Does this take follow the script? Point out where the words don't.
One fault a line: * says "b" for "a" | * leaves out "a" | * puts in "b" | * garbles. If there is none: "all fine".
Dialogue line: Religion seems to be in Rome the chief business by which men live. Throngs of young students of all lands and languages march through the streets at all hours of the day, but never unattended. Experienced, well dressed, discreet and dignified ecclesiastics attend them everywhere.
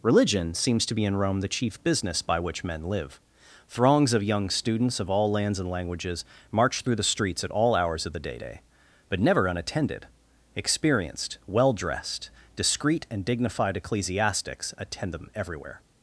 * puts in "day"